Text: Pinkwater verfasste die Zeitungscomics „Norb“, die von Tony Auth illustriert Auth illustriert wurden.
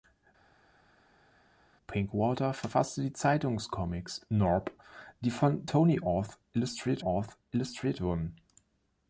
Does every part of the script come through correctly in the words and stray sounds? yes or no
yes